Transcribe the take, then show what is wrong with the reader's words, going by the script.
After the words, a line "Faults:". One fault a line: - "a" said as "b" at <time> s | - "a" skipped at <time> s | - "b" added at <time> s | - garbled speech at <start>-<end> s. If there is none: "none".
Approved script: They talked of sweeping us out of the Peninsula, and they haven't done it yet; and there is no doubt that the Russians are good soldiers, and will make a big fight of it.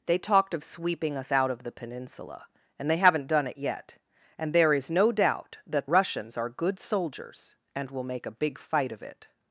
They talked of sweeping us out of the Peninsula, and they haven't done it yet; and there is no doubt that Russians are good soldiers, and will make a big fight of it.
Faults:
- "the" skipped at 5.9 s